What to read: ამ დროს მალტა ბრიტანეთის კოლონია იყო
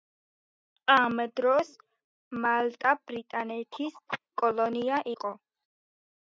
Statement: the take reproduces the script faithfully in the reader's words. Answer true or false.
true